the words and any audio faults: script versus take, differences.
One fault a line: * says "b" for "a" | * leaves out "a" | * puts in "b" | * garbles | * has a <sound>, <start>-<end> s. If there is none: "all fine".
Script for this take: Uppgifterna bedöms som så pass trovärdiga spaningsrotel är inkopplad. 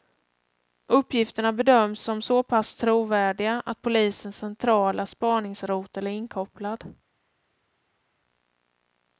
* puts in "att polisens centrala"